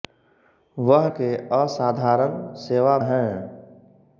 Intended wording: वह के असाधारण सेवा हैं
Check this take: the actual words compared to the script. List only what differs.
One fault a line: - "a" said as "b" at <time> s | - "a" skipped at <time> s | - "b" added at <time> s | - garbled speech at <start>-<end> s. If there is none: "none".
none